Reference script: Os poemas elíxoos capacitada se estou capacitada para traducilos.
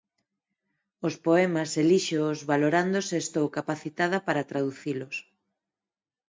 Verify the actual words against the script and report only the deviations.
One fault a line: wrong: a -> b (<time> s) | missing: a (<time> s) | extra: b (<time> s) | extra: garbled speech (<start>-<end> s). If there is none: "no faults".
wrong: capacitada -> valorando (2.5 s)